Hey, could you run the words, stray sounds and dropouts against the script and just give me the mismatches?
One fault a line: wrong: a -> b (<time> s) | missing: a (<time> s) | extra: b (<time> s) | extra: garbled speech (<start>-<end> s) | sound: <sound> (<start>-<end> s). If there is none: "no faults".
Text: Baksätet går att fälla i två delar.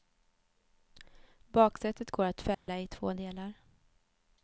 sound: dropout (2.5-2.7 s)